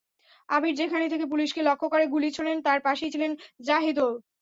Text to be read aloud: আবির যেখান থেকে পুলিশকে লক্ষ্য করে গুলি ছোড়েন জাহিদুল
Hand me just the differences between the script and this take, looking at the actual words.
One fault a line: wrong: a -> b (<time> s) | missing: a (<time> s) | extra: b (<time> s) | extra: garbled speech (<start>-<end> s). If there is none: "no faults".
extra: তার পাশেই ছিলেন (2.6 s)